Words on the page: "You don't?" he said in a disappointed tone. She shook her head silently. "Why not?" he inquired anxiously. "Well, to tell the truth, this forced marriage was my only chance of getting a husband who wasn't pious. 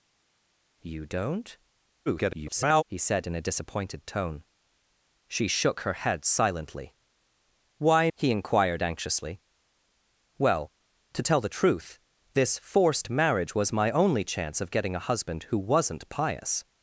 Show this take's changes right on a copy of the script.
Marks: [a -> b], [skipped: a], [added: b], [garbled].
"You don't?" [garbled] he said in a disappointed tone. She shook her head silently. "Why [skipped: not?"] he inquired anxiously. "Well, to tell the truth, this forced marriage was my only chance of getting a husband who wasn't pious.